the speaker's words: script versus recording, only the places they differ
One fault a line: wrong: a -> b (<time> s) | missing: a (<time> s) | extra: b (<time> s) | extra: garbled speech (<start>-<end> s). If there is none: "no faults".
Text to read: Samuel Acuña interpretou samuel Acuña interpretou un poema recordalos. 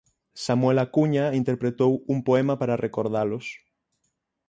missing: samuel Acuña interpretou (1.9 s)
extra: para (2.6 s)